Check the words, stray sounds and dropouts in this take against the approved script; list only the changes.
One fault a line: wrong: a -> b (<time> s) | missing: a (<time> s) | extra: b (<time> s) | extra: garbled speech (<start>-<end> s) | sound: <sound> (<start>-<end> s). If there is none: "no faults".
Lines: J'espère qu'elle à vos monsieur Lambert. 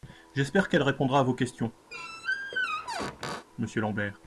extra: répondra (0.8 s)
extra: questions (1.4 s)
sound: squeak (1.9-3.5 s)